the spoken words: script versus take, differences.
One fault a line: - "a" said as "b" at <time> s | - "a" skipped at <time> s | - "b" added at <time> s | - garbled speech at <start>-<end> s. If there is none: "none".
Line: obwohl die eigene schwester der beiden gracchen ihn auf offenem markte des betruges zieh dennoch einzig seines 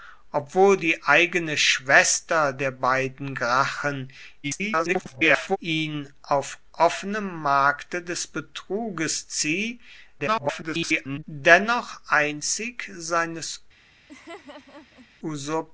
- garbled speech at 4.4-5.6 s
- garbled speech at 10.2-11.2 s